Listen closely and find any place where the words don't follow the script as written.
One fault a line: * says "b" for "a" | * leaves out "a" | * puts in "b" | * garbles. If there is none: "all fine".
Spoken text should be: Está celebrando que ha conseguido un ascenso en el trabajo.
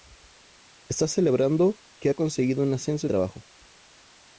* leaves out "el"